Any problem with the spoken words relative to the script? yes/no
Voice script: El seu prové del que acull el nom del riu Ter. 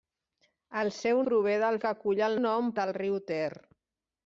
no